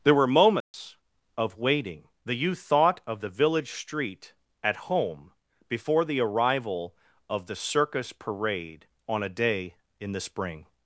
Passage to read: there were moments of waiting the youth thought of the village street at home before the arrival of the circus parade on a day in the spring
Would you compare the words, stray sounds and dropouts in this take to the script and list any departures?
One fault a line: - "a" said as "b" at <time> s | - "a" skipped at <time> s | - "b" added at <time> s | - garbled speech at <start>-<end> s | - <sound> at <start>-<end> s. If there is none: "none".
- dropout at 0.6-0.7 s